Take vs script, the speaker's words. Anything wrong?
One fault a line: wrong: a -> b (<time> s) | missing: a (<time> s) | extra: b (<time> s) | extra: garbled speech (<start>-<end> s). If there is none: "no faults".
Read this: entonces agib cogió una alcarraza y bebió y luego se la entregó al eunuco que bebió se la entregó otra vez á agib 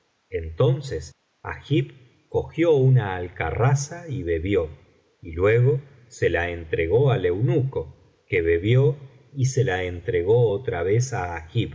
extra: y (9.3 s)